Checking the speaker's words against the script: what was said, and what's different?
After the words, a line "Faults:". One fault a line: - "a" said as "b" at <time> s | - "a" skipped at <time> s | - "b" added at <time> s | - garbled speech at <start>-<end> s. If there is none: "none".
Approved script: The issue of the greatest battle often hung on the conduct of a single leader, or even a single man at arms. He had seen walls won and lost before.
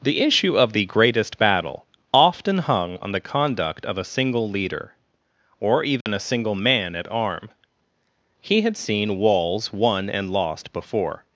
The issue of the greatest battle often hung on the conduct of a single leader, or even a single man at arm. He had seen walls won and lost before.
Faults:
- "arms" said as "arm" at 7.1 s